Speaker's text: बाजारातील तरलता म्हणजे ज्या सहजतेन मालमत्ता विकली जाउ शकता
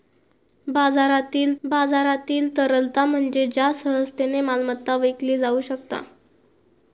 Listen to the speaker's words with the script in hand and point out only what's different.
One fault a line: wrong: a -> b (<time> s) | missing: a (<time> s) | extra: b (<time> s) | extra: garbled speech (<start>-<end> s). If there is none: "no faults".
extra: बाजारातील (1.6 s)